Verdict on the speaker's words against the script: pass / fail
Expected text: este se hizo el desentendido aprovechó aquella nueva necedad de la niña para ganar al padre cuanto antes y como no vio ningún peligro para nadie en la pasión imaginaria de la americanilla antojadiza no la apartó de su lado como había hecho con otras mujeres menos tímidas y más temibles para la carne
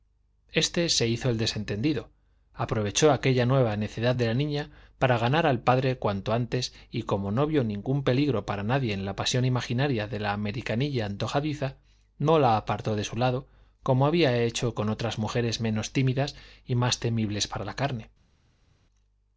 pass